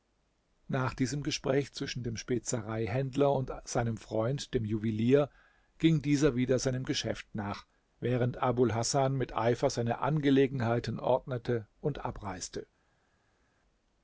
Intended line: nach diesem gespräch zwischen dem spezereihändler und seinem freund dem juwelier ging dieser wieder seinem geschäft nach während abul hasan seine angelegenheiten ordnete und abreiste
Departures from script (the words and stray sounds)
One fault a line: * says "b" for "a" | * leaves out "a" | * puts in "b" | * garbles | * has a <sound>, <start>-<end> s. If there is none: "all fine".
* puts in "mit eifer"